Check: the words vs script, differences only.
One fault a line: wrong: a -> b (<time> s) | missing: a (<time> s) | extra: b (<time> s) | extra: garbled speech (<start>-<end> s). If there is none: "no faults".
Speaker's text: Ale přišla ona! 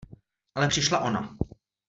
no faults